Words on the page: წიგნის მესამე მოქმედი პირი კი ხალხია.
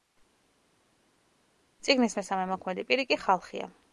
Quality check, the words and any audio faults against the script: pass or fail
pass